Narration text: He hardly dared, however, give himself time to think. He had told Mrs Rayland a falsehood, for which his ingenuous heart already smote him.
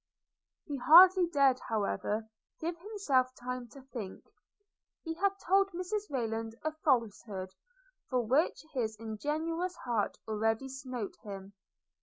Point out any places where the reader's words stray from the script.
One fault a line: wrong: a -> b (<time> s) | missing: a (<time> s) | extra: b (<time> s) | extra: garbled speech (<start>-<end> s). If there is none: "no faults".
no faults